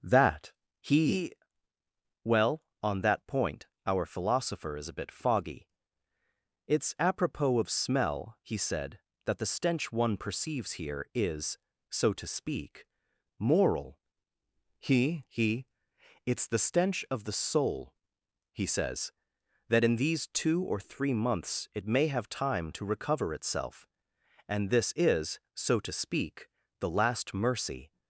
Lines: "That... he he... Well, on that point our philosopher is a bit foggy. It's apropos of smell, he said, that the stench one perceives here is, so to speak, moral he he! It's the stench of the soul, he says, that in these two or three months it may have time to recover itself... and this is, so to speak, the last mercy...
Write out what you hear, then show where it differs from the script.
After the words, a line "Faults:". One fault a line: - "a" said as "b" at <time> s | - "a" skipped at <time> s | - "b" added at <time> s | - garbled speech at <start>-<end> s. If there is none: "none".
"That... he... Well, on that point our philosopher is a bit foggy. It's apropos of smell, he said, that the stench one perceives here is, so to speak, moral he he! It's the stench of the soul, he says, that in these two or three months it may have time to recover itself... and this is, so to speak, the last mercy...
Faults:
- "he" skipped at 1.3 s